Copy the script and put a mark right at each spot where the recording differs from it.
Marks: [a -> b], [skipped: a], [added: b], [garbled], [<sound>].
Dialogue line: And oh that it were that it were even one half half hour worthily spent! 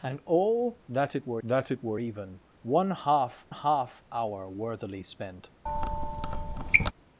And oh that it were that it were even one half half hour worthily spent! [squeak]